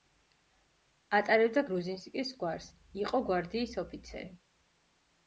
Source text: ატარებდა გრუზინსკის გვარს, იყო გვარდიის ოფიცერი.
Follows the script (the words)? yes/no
yes